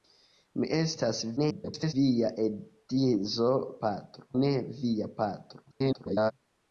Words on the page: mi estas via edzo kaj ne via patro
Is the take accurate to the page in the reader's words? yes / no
no